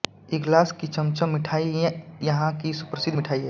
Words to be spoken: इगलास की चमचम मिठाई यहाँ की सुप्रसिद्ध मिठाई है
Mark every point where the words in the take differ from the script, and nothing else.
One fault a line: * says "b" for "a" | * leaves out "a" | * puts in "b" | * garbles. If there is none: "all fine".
all fine